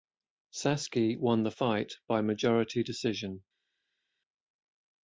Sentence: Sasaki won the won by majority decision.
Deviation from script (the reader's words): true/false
true